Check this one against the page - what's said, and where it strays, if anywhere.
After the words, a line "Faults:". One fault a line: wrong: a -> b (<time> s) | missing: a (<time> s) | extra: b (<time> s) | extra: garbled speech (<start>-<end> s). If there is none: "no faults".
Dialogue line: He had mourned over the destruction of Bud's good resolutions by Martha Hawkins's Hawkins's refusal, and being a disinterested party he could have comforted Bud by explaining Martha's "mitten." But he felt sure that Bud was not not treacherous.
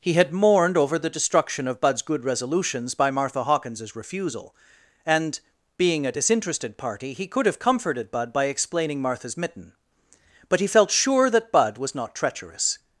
He had mourned over the destruction of Bud's good resolutions by Martha Hawkins's refusal, and being a disinterested party he could have comforted Bud by explaining Martha's "mitten." But he felt sure that Bud was not treacherous.
Faults:
missing: Hawkins's (4.0 s)
missing: not (12.2 s)